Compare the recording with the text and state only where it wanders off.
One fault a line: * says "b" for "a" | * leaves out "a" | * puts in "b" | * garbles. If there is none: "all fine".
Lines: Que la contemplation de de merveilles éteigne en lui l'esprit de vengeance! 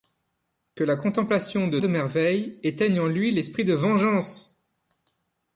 all fine